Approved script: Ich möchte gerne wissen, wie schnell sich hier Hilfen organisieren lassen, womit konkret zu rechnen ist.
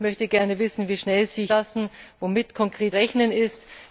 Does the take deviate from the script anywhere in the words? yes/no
yes